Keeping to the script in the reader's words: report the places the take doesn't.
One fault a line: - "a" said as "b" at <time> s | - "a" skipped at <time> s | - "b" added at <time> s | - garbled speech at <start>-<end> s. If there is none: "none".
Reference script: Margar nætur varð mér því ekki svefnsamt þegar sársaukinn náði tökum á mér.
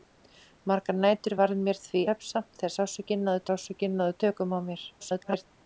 - "ekki" skipped at 2.0 s
- "sársaukinn náði" added at 3.5 s
- garbled speech at 5.0-5.4 s